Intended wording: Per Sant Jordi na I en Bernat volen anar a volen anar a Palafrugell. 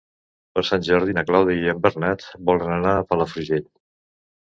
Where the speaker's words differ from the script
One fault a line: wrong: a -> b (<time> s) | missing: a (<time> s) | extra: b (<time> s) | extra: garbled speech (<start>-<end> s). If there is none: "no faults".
extra: Clàudia (1.3 s)
missing: volen anar a (3.1 s)